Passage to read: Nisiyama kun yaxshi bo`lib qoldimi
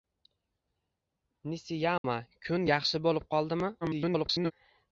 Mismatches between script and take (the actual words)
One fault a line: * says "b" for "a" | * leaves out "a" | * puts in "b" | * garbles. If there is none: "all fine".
* garbles